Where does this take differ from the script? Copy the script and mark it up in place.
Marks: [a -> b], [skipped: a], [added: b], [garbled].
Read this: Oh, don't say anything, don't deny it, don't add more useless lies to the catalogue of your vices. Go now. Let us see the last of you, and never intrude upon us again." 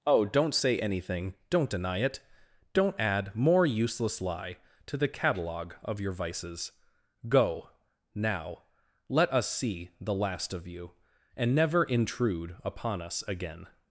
Oh, don't say anything, don't deny it, don't add more useless [lies -> lie] to the catalogue of your vices. Go now. Let us see the last of you, and never intrude upon us again."